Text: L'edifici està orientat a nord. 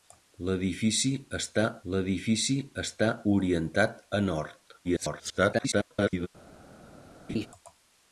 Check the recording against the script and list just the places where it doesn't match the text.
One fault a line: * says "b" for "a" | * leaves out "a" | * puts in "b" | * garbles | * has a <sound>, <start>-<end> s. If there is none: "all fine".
* puts in "l'edifici està"
* garbles
* has a laugh, 7.3-7.5 s